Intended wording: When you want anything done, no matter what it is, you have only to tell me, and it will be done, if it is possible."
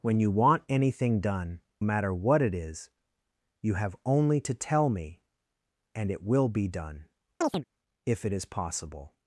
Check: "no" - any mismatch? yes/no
yes